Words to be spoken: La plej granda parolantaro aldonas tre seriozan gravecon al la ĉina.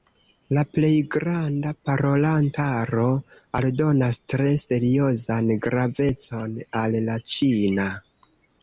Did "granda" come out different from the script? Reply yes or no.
no